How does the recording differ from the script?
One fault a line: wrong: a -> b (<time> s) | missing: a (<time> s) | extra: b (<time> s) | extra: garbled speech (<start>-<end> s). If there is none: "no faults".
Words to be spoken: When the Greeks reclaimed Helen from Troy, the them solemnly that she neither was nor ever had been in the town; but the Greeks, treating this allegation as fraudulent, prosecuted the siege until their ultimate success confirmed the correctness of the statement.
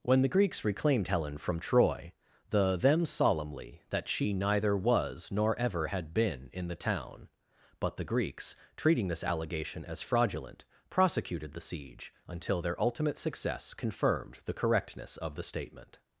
no faults